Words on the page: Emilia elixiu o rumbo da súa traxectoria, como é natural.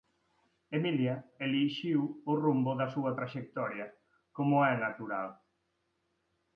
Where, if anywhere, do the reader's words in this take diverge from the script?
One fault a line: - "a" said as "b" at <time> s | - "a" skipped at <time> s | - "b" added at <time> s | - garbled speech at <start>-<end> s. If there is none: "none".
none